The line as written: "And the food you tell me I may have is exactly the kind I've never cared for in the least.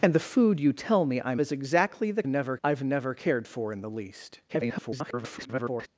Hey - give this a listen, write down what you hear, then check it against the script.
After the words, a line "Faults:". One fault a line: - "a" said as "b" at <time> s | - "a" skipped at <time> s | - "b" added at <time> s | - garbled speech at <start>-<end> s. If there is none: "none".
"And the food you tell me I is exactly the never I've never cared for in the least. [garbled]
Faults:
- "may have" skipped at 1.4 s
- "kind" said as "never" at 2.3 s
- garbled speech at 4.5-5.9 s